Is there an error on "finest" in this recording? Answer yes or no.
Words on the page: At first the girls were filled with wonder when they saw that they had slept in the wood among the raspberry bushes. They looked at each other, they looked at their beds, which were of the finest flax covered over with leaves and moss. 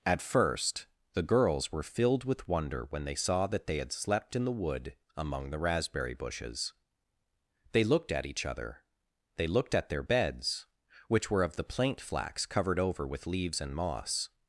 yes